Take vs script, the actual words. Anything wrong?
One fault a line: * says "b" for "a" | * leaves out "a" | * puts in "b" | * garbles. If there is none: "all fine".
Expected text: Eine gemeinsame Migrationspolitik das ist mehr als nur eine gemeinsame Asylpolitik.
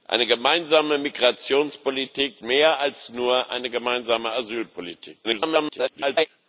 * leaves out "das ist"
* garbles